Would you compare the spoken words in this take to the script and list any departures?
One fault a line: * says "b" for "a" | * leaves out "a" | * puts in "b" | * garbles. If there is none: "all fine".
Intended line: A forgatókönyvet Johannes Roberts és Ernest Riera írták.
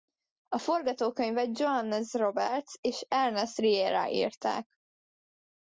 all fine